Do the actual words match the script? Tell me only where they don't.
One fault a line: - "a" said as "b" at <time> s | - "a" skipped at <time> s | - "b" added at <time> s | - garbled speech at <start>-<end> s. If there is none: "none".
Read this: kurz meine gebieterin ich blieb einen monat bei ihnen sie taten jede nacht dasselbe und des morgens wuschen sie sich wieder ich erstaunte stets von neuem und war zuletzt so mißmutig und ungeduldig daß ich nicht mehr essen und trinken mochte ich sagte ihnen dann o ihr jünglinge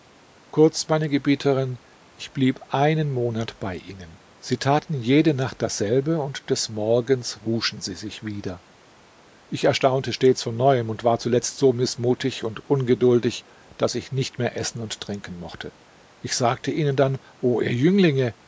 none